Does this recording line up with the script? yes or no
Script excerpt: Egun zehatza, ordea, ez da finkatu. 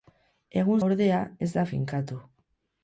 no